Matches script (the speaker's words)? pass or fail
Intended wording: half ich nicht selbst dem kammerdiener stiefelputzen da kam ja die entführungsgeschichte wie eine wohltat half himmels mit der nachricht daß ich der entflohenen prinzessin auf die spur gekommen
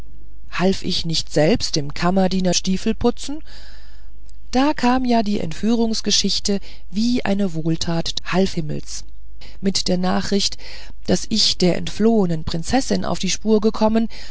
pass